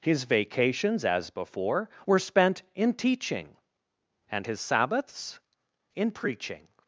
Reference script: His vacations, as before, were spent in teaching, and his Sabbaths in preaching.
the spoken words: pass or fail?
pass